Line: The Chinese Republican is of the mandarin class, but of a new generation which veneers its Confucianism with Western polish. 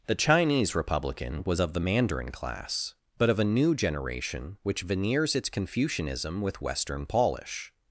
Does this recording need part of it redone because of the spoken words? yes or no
yes